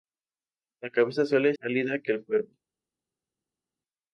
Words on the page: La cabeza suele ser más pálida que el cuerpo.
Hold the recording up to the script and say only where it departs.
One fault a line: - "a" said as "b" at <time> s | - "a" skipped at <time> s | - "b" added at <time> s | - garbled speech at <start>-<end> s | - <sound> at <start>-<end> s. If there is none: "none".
- "ser más" skipped at 1.5 s